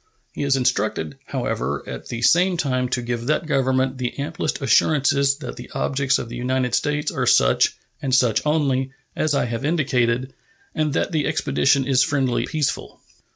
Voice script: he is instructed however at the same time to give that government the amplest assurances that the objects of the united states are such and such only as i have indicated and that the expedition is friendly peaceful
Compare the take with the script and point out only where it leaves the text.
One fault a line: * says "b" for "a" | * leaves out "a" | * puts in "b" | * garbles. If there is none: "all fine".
all fine